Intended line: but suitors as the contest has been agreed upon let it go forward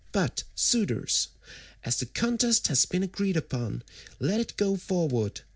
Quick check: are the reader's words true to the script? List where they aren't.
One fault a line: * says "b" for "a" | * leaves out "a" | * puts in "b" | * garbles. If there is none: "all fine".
all fine